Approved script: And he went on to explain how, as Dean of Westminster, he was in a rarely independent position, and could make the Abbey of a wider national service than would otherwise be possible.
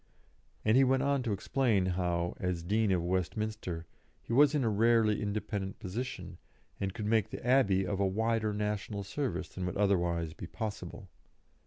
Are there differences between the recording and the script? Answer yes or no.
no